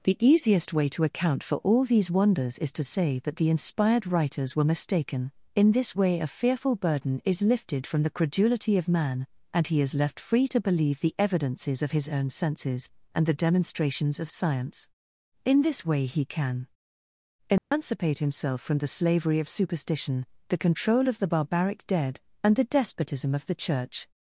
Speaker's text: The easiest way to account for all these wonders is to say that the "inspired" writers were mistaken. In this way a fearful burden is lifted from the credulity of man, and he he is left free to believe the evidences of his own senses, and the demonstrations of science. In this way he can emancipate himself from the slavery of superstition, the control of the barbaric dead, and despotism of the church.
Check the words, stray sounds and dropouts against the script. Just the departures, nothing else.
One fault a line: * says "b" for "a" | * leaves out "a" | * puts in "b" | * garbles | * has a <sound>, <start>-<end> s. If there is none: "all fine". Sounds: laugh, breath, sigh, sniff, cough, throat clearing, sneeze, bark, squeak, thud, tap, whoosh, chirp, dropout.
* leaves out "he"
* has a dropout, 17.6-17.7 s
* puts in "the"